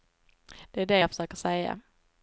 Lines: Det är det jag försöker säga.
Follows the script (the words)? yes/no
yes